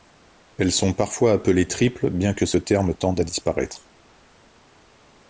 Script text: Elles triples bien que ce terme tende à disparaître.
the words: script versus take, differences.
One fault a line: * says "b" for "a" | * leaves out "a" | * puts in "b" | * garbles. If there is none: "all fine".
* puts in "sont parfois appelées"